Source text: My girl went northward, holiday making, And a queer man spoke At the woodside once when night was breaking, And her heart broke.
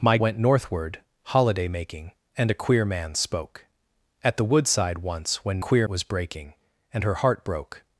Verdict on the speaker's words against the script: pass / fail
fail